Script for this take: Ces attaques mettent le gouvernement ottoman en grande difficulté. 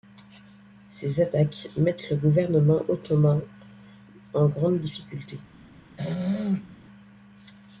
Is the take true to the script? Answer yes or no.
yes